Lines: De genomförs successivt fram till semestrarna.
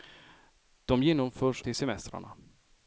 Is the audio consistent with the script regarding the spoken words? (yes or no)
no